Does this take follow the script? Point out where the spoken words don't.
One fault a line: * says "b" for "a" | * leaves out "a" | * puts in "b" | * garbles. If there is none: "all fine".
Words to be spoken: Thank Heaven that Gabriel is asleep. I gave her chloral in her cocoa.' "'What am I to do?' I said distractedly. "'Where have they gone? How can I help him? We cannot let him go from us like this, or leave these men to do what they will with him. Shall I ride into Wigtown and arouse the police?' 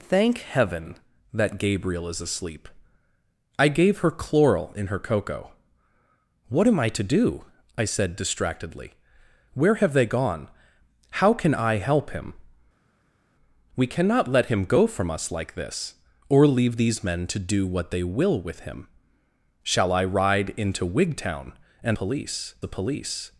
* says "police" for "arouse"